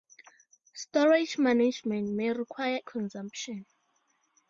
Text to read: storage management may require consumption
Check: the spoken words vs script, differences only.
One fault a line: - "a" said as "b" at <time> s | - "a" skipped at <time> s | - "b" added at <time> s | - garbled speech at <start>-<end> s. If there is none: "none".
none